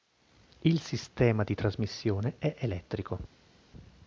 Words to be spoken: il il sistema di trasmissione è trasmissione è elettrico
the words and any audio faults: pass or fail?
fail